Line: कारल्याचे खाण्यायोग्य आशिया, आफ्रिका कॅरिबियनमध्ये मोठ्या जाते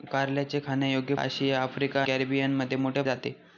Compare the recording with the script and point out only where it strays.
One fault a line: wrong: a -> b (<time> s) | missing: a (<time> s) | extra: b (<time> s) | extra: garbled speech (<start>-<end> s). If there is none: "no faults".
no faults